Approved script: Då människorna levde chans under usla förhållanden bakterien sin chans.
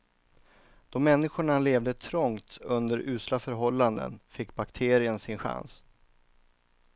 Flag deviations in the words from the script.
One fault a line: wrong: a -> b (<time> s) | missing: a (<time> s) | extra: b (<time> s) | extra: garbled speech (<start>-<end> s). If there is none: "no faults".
wrong: chans -> trångt (1.9 s)
extra: fick (4.3 s)